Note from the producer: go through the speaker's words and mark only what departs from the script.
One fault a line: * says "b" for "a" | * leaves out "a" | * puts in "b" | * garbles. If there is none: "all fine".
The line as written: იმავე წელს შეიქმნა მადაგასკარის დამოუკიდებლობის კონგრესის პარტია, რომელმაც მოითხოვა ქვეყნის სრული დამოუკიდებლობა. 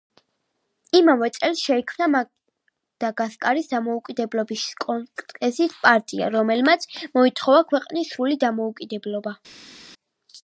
all fine